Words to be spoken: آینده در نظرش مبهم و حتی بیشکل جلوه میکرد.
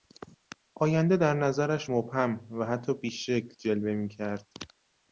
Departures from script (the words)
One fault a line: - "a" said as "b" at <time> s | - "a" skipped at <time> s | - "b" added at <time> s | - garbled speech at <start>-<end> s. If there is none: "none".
none